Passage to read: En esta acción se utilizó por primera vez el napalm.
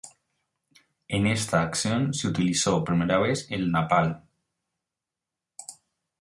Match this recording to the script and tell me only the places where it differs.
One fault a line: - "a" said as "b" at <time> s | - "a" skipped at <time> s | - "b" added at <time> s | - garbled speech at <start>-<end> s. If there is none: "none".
- "por" skipped at 2.8 s